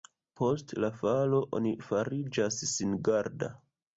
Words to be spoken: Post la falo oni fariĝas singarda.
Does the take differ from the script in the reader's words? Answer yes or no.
no